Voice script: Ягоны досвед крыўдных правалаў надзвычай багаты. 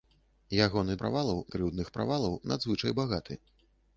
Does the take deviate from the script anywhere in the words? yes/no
yes